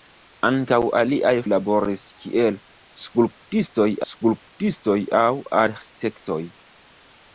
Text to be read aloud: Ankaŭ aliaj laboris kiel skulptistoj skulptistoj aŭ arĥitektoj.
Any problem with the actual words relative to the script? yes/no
no